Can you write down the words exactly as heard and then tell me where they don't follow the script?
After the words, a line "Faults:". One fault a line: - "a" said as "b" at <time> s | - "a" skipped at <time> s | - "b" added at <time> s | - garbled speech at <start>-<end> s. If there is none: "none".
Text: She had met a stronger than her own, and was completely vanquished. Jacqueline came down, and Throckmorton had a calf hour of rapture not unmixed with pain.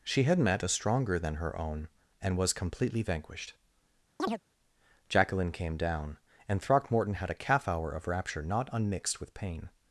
She had met a stronger than her own, and was completely vanquished. Jacqueline came down, and Throckmorton had a calf hour of rapture not unmixed with pain.
Faults:
none